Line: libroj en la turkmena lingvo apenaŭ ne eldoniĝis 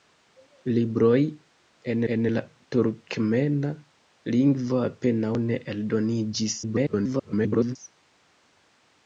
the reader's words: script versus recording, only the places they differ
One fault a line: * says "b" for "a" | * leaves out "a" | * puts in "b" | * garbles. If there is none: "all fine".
* puts in "en"
* garbles